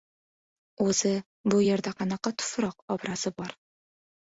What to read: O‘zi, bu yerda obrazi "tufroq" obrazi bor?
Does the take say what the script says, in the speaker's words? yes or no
no